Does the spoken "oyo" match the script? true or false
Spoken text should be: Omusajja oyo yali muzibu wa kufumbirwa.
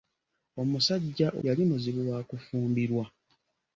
false